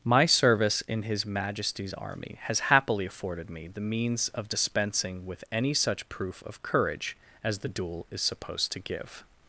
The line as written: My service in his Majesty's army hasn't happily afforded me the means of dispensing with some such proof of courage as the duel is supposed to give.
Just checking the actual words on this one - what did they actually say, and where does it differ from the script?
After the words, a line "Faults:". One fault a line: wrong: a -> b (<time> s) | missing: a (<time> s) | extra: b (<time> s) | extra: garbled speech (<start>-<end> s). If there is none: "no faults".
My service in his Majesty's army has happily afforded me the means of dispensing with any such proof of courage as the duel is supposed to give.
Faults:
wrong: hasn't -> has (2.5 s)
wrong: some -> any (5.5 s)